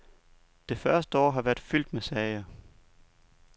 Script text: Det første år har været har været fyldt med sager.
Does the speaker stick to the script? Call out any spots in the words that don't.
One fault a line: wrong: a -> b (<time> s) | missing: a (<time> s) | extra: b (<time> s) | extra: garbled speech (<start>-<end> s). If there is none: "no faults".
missing: har været (1.6 s)